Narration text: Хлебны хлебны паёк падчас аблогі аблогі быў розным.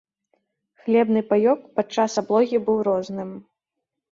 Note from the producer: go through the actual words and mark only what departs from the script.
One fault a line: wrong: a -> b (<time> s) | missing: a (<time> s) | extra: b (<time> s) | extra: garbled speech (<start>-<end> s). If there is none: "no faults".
missing: хлебны (1.2 s)
missing: аблогі (2.6 s)